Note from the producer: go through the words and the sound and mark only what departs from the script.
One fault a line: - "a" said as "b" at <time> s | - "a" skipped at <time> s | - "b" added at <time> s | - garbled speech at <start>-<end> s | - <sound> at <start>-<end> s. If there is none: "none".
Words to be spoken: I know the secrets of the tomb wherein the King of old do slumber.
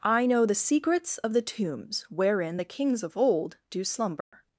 - "tomb" said as "tombs" at 1.4 s
- "King" said as "Kings" at 2.6 s
- dropout at 4.2-4.3 s